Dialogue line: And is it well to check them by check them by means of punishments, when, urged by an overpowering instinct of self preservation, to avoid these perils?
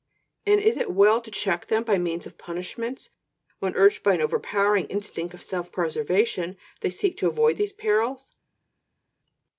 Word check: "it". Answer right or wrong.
right